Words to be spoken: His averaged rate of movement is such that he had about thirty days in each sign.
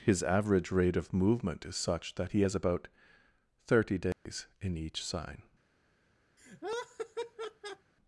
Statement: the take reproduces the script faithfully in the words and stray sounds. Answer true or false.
false